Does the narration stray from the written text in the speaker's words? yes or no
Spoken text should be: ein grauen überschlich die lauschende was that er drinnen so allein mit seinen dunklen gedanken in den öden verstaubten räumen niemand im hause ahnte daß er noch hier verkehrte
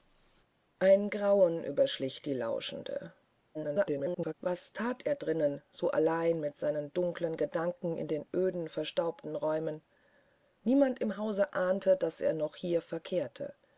yes